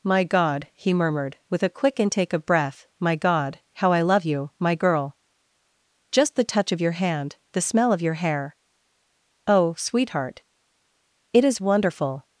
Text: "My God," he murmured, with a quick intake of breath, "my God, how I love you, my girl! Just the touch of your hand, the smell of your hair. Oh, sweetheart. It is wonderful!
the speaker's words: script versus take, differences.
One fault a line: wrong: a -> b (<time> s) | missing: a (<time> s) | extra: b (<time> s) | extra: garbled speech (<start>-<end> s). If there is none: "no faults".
no faults